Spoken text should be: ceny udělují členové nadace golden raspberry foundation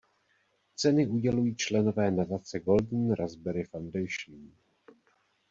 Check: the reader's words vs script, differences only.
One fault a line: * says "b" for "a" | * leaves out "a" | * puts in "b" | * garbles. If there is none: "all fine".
all fine